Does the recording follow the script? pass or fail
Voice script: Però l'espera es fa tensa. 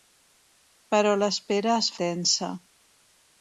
fail